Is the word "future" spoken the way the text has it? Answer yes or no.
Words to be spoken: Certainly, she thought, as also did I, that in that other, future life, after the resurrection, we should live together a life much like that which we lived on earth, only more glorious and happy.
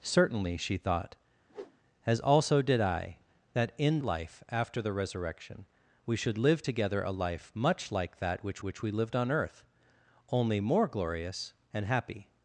no